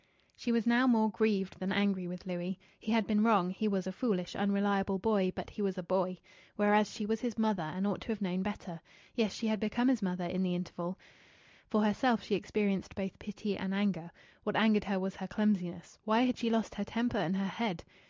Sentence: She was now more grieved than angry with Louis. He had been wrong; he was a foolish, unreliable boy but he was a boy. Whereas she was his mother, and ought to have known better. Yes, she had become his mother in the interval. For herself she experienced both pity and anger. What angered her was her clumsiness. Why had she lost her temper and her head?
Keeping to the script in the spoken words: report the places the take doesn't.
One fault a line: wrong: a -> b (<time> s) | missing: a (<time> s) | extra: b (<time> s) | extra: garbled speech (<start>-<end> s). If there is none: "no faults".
no faults